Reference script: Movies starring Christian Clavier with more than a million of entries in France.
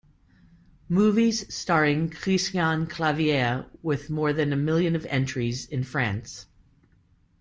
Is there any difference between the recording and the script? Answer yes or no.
no